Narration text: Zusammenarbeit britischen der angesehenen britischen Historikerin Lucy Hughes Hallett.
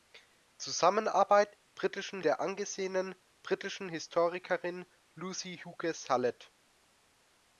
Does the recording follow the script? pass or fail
pass